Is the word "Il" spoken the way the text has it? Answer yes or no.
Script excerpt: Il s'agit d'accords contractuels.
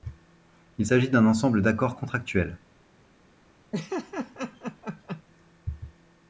yes